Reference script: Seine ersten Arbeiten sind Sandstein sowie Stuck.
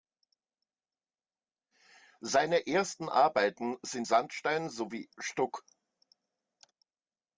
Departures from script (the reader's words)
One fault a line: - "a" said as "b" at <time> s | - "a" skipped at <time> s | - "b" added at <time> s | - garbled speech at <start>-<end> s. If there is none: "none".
none